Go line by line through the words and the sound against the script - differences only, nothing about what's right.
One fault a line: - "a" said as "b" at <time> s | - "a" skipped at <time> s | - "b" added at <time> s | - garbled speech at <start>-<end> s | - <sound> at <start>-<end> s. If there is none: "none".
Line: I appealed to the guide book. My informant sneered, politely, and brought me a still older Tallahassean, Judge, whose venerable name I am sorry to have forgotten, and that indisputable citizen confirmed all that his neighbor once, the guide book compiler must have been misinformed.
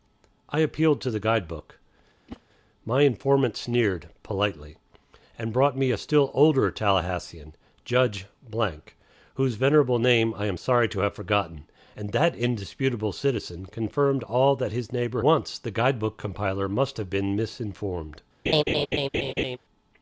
- whoosh at 2.3-2.4 s
- laugh at 18.5-19.6 s